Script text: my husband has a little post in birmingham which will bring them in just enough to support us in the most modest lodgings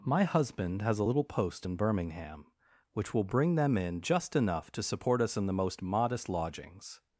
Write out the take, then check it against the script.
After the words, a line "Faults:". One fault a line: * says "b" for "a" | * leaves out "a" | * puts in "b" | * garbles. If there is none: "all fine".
my husband has a little post in birmingham which will bring them in just enough to support us in the most modest lodgings
Faults:
all fine